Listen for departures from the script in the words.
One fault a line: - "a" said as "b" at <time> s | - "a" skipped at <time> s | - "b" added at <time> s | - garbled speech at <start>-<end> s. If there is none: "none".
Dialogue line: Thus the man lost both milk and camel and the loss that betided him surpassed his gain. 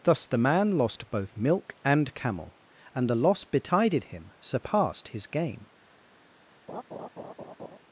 - "that" skipped at 3.4 s